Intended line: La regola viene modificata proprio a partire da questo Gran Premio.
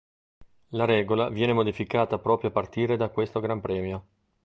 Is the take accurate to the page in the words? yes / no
yes